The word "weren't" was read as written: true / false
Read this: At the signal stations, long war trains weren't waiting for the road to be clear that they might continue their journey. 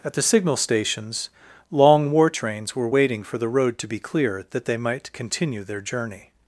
false